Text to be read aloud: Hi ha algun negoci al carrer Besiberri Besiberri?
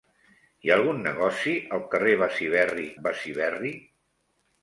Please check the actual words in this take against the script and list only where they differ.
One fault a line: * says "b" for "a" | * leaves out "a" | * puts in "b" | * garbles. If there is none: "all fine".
all fine